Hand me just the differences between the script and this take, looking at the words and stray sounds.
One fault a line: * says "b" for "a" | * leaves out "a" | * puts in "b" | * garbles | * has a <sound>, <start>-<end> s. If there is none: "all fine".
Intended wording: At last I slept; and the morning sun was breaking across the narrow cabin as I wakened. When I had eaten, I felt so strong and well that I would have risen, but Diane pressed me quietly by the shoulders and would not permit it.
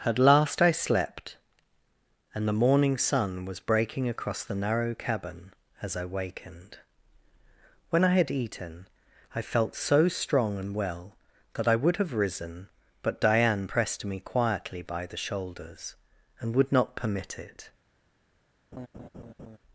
* has a laugh, 18.7-19.6 s